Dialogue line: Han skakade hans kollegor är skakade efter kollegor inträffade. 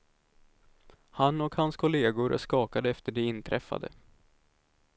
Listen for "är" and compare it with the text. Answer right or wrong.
right